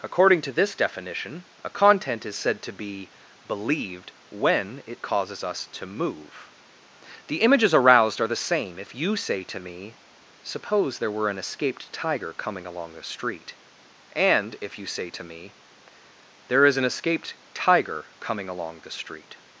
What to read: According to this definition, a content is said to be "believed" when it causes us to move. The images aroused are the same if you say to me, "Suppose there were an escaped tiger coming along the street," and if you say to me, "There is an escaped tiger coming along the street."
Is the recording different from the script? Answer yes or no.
no